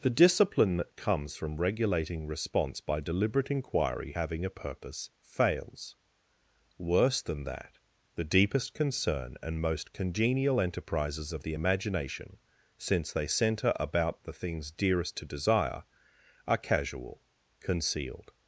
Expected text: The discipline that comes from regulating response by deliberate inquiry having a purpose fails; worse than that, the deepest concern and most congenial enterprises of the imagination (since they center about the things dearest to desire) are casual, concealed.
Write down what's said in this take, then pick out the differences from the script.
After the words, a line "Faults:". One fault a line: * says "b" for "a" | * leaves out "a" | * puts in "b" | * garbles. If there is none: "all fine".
The discipline that comes from regulating response by deliberate inquiry having a purpose fails; worse than that, the deepest concern and most congenial enterprises of the imagination (since they center about the things dearest to desire) are casual, concealed.
Faults:
all fine